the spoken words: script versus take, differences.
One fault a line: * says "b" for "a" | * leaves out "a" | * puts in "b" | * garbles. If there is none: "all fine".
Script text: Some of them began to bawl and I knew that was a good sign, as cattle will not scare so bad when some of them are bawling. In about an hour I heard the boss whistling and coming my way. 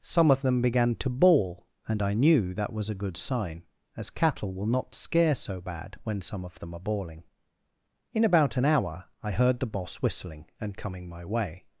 all fine